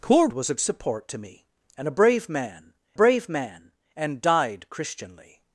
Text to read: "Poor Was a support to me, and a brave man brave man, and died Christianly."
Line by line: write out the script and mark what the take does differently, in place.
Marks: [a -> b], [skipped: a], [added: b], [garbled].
"Poor Was a support to me, and a brave man brave man, and died Christianly."